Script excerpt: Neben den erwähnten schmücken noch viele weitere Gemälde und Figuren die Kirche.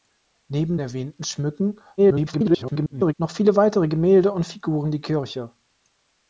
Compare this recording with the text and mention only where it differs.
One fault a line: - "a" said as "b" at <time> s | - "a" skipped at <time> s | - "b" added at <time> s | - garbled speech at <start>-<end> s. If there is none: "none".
- "den" skipped at 0.8 s
- garbled speech at 2.0-3.1 s